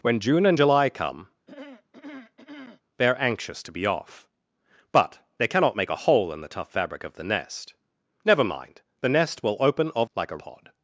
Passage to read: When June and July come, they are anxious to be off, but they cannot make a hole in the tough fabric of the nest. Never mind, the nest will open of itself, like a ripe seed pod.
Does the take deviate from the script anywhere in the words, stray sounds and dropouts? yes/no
yes